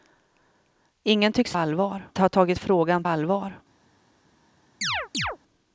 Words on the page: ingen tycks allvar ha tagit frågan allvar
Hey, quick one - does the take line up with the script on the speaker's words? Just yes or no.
yes